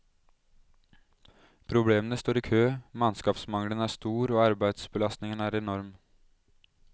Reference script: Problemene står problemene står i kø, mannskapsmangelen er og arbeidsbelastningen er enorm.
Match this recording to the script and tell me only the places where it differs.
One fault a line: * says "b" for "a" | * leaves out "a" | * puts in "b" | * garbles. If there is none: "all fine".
* leaves out "problemene står"
* puts in "stor"